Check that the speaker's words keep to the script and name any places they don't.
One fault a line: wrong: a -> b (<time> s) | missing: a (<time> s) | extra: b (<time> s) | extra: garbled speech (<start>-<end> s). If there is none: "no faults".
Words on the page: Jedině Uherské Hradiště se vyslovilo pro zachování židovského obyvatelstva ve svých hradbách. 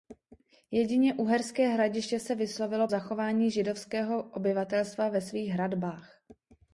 missing: pro (2.9 s)